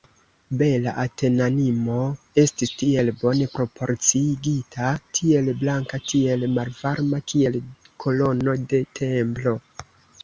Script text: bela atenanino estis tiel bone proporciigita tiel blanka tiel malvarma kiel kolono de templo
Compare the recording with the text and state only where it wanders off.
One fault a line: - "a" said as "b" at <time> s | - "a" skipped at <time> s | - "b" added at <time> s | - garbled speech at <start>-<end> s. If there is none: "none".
none